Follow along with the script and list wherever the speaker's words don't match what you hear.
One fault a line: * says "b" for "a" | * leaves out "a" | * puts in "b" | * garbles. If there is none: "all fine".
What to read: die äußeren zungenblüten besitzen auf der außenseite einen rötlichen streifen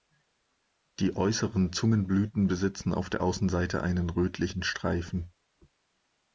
all fine